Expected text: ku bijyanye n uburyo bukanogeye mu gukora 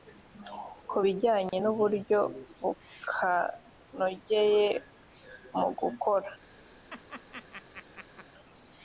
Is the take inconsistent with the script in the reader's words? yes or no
no